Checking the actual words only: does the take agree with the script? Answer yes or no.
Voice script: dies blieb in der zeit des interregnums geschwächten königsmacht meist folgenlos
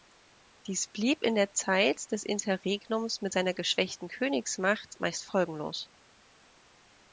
no